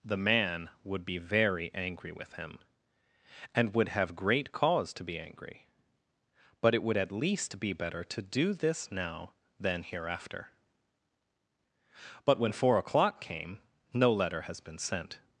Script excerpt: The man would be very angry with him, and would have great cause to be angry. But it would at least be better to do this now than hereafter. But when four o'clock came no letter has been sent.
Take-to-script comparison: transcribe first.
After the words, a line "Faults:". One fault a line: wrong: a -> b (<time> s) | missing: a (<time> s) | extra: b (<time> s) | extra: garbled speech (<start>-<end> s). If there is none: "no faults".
The man would be very angry with him, and would have great cause to be angry. But it would at least be better to do this now than hereafter. But when four o'clock came no letter has been sent.
Faults:
no faults